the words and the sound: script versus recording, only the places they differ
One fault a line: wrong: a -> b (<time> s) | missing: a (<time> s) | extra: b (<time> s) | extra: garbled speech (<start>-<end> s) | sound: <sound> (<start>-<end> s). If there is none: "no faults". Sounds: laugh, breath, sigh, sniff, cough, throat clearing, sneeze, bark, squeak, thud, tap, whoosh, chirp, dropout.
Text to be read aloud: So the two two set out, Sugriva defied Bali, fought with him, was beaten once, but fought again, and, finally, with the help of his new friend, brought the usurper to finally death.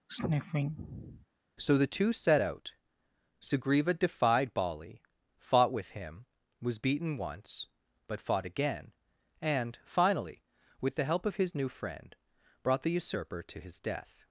sound: sniff (0.1-1.3 s)
missing: two (2.1 s)
wrong: finally -> his (13.6 s)